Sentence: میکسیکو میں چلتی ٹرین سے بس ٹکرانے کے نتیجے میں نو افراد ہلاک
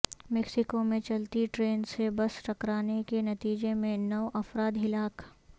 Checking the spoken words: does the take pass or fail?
pass